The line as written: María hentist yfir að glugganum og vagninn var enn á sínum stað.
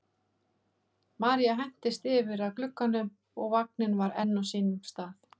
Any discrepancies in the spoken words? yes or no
no